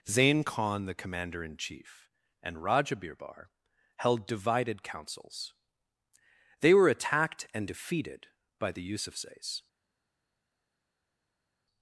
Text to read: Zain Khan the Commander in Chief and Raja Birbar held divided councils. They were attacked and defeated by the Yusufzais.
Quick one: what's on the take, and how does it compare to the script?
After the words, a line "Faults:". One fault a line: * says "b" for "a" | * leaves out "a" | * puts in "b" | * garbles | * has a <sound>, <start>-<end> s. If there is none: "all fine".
Zain Khan the Commander in Chief and Raja Birbar held divided councils. They were attacked and defeated by the Yusufzais.
Faults:
all fine